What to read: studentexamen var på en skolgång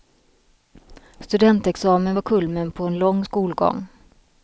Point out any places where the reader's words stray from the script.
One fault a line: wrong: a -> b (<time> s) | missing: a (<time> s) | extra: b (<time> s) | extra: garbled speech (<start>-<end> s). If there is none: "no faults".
extra: kulmen (2.2 s)
extra: lång (3.0 s)